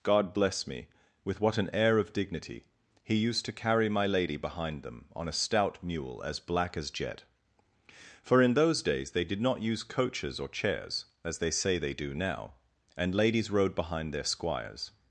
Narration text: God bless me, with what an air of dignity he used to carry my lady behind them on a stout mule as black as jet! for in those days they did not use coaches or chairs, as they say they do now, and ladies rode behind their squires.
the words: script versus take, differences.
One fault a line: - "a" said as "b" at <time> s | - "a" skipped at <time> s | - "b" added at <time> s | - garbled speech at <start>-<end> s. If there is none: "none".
none